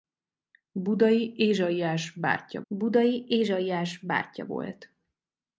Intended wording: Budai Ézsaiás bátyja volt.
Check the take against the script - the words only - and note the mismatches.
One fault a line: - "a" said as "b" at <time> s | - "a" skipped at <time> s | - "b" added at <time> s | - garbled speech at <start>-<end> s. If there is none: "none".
- "budai Ézsaiás bátyja" added at 2.7 s